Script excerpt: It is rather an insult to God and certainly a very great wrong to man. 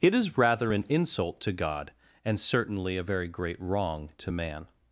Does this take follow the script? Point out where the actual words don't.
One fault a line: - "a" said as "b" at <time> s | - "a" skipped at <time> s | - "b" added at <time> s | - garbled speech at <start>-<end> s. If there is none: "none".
none